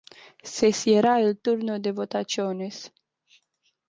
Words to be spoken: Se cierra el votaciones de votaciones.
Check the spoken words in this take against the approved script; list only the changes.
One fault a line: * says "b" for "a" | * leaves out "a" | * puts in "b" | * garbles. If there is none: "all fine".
* says "turno" for "votaciones"